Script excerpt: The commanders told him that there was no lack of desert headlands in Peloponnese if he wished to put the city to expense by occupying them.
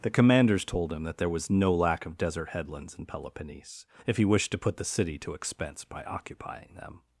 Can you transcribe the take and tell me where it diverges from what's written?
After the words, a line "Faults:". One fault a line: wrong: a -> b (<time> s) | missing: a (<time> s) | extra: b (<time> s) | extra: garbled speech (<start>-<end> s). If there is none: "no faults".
The commanders told him that there was no lack of desert headlands in Peloponnese if he wished to put the city to expense by occupying them.
Faults:
no faults